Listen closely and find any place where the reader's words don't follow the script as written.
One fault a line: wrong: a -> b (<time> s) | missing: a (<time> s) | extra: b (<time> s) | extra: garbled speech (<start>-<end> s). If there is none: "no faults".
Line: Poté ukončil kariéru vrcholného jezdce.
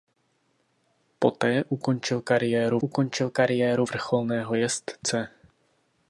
extra: ukončil kariéru (2.8 s)